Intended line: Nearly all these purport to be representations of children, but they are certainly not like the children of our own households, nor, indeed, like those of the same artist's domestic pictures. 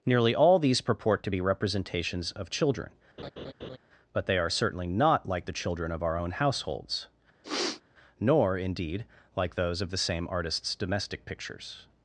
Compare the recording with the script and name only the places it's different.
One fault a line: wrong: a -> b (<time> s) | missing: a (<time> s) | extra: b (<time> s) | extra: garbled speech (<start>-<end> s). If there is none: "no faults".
no faults